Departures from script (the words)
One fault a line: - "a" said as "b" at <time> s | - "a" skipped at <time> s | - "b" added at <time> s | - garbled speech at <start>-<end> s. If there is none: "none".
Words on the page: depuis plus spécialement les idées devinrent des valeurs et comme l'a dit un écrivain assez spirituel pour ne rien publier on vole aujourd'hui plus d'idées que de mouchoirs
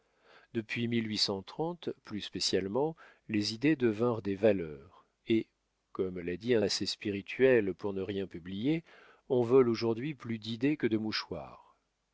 - "écrivain" skipped at 6.7 s